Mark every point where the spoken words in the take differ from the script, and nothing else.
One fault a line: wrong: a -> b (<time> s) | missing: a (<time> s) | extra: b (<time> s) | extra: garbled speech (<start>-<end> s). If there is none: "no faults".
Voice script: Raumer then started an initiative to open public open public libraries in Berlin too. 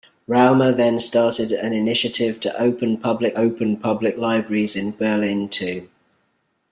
no faults